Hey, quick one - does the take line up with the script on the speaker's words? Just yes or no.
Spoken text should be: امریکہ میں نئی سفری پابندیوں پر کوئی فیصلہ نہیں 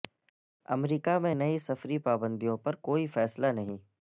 yes